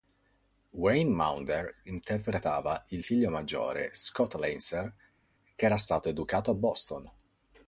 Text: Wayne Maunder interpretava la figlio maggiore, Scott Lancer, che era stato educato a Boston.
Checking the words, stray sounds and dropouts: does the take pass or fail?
fail